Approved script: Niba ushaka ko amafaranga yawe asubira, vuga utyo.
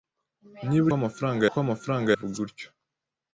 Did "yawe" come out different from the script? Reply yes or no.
yes